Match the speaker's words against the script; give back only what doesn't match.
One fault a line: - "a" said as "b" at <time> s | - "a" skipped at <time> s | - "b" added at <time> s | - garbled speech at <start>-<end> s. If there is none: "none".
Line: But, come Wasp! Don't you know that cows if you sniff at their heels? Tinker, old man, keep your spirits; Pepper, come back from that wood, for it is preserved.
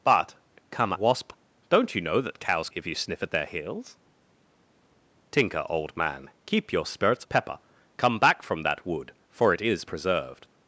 none